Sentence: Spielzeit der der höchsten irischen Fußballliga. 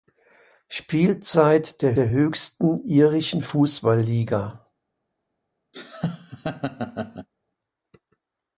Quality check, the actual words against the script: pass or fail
pass